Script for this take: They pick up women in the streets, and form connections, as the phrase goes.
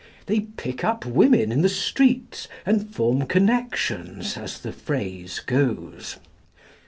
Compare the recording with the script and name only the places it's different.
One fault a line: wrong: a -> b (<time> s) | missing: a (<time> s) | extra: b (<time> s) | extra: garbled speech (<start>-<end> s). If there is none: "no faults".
no faults